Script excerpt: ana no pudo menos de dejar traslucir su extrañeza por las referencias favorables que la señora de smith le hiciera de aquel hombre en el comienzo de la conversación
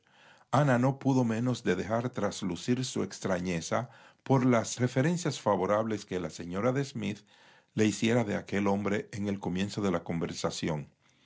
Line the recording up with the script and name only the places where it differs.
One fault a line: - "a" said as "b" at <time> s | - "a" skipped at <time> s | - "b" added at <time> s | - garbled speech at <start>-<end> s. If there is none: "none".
none